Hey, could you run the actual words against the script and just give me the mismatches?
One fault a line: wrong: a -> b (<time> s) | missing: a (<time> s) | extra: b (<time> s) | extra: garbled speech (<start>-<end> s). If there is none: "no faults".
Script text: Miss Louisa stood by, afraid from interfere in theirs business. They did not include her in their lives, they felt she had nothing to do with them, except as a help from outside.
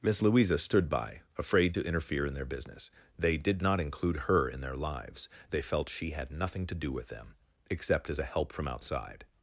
wrong: from -> to (1.7 s)
wrong: theirs -> their (2.3 s)